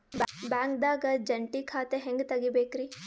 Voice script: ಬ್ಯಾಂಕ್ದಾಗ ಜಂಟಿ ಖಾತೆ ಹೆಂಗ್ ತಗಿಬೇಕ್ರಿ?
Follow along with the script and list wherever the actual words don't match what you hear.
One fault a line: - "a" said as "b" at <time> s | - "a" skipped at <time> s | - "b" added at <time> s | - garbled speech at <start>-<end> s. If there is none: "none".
none